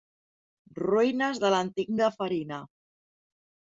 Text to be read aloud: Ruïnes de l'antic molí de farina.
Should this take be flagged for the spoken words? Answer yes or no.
yes